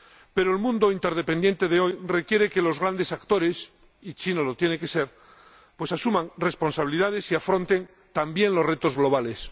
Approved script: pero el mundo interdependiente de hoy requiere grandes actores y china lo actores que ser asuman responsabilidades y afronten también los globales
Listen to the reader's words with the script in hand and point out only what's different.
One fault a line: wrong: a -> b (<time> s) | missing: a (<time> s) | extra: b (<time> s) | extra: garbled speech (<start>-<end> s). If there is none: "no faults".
extra: que los (2.5 s)
wrong: actores -> tiene (4.6 s)
extra: retos (8.7 s)